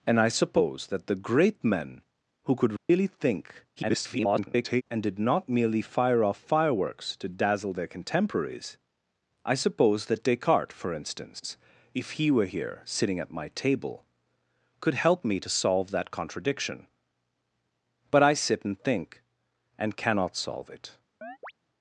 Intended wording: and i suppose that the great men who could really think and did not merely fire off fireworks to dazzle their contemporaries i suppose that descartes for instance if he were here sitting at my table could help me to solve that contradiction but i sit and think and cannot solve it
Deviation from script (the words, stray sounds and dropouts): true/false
true